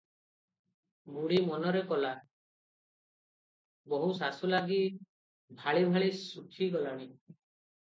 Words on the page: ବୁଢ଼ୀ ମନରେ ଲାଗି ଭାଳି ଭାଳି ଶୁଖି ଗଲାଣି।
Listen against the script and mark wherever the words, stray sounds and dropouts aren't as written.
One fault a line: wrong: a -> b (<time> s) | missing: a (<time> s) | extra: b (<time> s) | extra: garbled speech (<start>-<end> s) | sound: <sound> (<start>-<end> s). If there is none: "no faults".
extra: କଲା ବୋହୂ ଶାଶୁ (1.9 s)